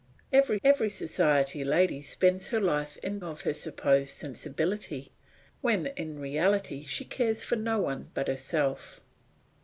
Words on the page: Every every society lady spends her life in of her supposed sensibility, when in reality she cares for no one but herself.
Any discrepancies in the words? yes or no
no